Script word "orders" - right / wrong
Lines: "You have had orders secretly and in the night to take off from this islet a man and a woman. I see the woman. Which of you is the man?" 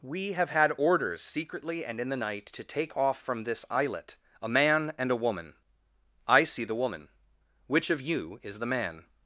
right